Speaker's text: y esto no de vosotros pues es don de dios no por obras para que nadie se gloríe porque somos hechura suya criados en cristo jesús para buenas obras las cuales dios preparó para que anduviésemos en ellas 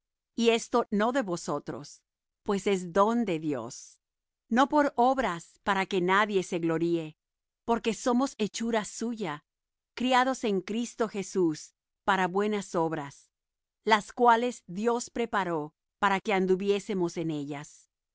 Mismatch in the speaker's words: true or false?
false